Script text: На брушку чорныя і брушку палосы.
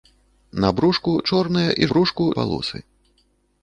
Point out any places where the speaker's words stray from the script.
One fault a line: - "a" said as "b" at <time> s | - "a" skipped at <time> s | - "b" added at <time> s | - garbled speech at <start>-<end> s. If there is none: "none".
none